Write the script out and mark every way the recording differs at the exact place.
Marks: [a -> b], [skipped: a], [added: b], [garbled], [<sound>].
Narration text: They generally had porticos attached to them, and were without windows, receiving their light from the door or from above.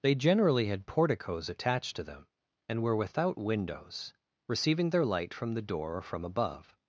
They generally had porticos attached to them, and were without windows, receiving their light from the door or from above.